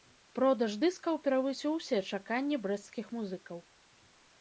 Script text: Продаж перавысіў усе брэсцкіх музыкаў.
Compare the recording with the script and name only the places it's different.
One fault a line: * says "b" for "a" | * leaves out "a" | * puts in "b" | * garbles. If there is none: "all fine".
* puts in "дыскаў"
* puts in "чаканні"